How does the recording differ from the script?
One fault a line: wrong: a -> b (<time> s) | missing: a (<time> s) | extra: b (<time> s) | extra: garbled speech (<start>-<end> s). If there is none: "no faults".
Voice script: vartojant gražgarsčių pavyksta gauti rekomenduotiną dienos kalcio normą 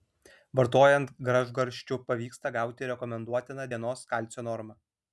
no faults